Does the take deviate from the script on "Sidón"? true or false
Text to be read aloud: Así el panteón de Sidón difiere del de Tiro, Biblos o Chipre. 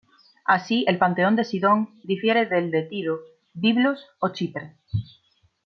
false